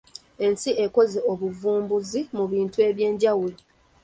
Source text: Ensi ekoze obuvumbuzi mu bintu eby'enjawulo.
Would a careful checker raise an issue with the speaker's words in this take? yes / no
no